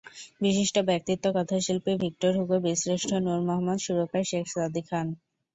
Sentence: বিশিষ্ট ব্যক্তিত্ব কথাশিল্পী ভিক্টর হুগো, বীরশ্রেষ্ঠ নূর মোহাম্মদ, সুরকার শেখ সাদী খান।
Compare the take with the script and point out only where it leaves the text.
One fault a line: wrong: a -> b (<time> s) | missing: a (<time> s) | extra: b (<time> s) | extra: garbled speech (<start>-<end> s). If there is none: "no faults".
no faults